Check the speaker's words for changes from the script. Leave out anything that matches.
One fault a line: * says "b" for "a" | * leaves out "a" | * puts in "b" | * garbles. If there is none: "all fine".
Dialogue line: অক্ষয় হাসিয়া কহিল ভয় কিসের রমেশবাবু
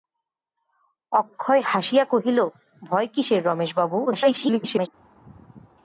* garbles